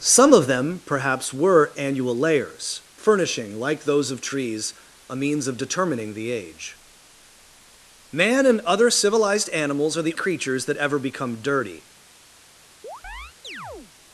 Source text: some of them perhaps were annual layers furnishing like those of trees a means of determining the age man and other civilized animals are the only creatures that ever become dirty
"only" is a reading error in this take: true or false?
true